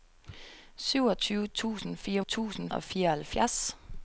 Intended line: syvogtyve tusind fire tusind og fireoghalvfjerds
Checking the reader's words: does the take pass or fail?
pass